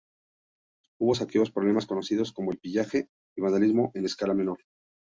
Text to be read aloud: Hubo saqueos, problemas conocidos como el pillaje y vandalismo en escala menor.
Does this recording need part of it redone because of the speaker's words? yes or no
no